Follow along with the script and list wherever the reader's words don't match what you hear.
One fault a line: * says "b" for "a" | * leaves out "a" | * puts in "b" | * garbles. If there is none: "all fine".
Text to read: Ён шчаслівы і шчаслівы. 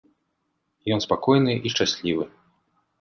* says "спакойны" for "шчаслівы"